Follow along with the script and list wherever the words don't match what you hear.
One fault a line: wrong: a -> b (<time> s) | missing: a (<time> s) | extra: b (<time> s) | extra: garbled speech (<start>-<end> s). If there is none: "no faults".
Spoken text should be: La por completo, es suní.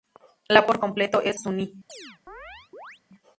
no faults